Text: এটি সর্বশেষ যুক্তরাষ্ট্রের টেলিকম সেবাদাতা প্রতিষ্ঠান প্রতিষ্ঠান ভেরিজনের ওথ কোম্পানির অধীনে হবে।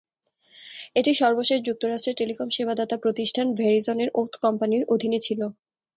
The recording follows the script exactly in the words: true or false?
false